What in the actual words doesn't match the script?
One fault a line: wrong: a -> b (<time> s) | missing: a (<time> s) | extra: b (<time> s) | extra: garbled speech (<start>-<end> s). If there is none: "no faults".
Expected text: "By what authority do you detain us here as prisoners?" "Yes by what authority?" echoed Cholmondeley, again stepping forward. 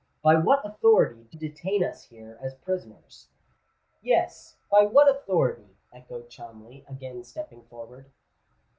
missing: you (1.4 s)